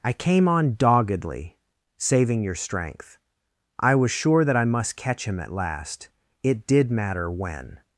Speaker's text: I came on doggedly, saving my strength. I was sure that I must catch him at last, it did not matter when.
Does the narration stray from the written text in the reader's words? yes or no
yes